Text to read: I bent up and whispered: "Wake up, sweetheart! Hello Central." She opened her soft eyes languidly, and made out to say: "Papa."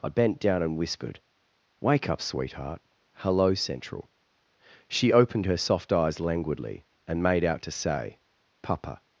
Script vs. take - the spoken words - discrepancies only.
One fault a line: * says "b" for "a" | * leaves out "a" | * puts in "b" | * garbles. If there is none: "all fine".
* says "down" for "up"